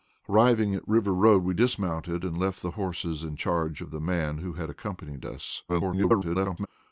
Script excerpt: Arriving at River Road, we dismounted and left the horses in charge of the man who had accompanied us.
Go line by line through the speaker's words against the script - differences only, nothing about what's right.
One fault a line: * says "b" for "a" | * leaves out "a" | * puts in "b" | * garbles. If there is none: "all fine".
* garbles